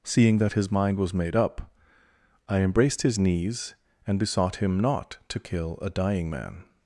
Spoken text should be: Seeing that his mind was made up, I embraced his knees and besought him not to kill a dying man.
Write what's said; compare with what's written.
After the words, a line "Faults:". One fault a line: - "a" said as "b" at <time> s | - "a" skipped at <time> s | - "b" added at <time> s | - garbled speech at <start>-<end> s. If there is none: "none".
Seeing that his mind was made up, I embraced his knees and besought him not to kill a dying man.
Faults:
none